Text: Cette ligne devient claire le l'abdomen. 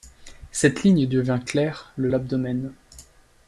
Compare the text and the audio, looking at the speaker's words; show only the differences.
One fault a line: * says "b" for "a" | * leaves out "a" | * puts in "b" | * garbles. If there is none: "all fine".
all fine